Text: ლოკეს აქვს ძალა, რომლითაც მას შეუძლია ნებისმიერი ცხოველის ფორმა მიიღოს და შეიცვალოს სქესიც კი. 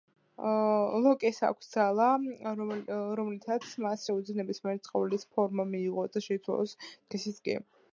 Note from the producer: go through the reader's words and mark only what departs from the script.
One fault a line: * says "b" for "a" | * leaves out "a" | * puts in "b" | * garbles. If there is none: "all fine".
all fine